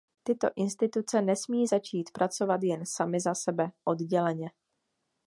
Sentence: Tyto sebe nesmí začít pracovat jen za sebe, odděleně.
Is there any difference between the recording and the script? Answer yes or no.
yes